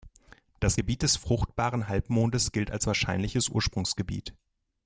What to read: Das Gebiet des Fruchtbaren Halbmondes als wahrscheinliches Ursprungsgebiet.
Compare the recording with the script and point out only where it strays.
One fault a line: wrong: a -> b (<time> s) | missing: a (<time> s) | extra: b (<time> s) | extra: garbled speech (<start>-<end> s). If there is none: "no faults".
extra: gilt (2.5 s)